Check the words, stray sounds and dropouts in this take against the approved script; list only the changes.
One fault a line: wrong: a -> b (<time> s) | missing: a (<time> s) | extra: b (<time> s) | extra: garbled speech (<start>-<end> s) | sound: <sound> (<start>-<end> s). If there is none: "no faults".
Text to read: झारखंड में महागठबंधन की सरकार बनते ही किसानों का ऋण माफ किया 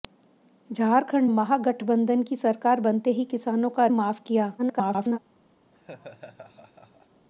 missing: में (1.3 s)
missing: ऋण (3.9 s)
extra: garbled speech (4.6-5.2 s)
sound: laugh (5.7-7.3 s)